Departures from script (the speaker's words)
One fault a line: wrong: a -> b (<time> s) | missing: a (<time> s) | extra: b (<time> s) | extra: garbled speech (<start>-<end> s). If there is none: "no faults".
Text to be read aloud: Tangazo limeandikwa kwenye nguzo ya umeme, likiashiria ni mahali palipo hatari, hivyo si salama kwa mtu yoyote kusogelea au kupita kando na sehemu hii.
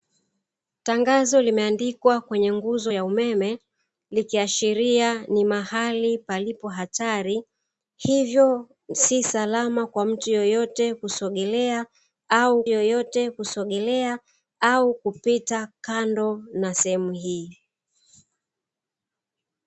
extra: yoyote kusogelea au (12.7 s)